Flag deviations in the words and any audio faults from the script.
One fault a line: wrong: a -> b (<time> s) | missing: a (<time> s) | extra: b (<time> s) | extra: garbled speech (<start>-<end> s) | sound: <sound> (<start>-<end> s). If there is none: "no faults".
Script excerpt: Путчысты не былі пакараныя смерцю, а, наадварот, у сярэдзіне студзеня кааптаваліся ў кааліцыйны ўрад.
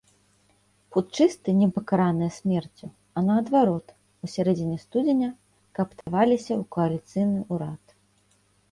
missing: былі (1.6 s)
sound: dropout (6.0-6.1 s)